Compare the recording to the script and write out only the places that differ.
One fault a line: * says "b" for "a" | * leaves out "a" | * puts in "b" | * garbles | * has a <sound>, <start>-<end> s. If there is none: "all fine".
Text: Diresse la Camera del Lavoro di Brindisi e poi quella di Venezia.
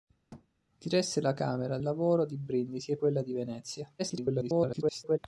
* has a thud, 0.3-0.5 s
* leaves out "del"
* leaves out "poi"
* garbles